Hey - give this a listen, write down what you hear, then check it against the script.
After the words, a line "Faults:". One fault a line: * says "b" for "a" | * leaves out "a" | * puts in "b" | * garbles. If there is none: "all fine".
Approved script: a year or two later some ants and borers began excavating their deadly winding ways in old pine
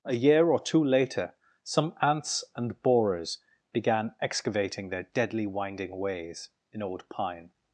a year or two later some ants and borers began excavating their deadly winding ways in old pine
Faults:
all fine